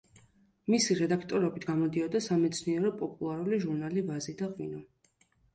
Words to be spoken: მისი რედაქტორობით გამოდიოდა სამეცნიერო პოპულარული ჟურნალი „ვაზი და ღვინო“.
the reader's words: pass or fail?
pass